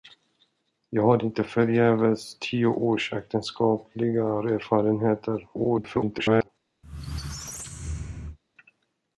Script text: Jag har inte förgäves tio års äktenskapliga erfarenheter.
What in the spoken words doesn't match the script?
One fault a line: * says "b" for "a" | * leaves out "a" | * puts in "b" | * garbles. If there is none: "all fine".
* garbles